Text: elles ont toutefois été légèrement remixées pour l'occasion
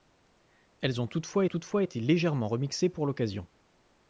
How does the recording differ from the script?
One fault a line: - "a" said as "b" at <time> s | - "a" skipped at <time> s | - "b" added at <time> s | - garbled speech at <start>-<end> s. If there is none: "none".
- "toutefois" added at 1.4 s